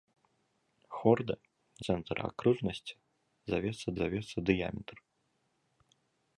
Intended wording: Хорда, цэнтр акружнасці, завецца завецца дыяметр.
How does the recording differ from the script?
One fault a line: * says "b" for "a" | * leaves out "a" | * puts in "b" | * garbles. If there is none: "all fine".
all fine